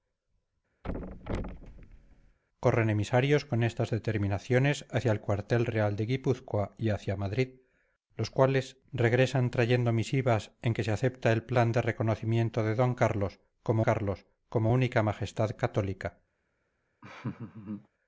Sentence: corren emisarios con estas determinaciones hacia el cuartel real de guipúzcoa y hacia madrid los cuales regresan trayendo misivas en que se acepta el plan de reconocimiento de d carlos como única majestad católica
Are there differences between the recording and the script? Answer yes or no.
yes